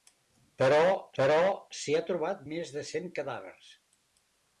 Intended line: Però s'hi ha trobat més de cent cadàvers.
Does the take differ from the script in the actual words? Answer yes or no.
yes